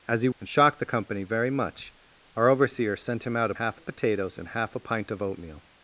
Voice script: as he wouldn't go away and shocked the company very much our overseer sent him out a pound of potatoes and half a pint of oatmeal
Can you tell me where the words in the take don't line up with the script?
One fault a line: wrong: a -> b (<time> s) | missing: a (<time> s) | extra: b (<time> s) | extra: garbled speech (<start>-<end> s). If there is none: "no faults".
missing: wouldn't go away (0.3 s)
wrong: pound -> half (3.5 s)